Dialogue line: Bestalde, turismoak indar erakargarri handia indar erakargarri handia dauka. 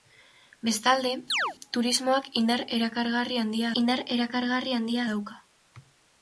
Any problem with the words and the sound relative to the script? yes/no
yes